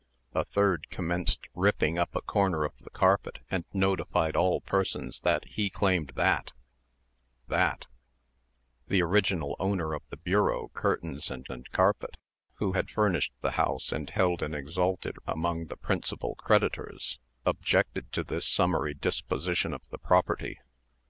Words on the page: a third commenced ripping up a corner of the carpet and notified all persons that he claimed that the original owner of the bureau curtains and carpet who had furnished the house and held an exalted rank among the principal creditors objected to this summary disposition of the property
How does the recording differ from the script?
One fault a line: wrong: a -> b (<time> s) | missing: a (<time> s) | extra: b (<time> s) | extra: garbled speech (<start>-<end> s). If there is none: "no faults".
extra: that (7.5 s)
extra: and (11.5 s)
missing: rank (15.2 s)